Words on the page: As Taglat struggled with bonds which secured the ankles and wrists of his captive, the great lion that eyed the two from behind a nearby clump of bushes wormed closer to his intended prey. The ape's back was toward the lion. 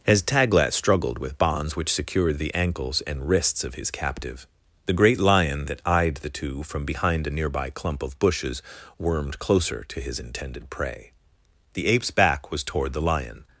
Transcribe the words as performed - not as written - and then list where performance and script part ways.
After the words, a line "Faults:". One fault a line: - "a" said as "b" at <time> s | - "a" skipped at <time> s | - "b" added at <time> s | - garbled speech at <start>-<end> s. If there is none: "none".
As Taglat struggled with bonds which secured the ankles and wrists of his captive, the great lion that eyed the two from behind a nearby clump of bushes wormed closer to his intended prey. The ape's back was toward the lion.
Faults:
none